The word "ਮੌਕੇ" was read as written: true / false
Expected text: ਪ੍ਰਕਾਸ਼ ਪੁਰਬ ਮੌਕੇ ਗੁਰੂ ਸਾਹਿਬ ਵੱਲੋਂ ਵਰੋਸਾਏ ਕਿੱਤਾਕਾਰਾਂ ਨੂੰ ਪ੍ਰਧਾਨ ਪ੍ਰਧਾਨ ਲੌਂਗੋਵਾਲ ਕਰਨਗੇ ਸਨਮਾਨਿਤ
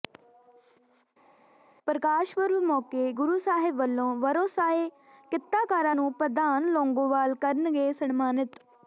true